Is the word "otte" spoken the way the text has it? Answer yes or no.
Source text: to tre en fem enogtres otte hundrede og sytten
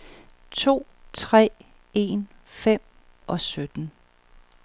no